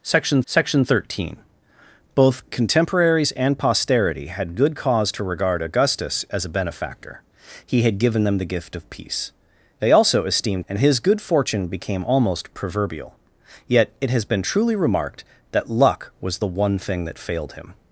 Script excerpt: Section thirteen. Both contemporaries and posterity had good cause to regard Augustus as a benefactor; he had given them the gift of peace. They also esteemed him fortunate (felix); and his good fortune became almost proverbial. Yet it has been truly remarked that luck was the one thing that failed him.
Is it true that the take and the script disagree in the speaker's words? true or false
true